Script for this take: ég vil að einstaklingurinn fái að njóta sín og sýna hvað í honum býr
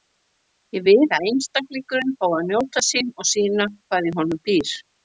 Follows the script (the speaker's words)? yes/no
yes